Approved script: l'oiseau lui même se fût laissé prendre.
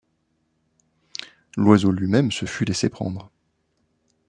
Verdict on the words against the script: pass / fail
pass